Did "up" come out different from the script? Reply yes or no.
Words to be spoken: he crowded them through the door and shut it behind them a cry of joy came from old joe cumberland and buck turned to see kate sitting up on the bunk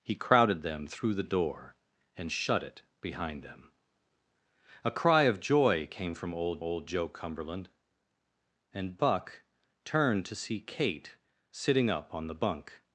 no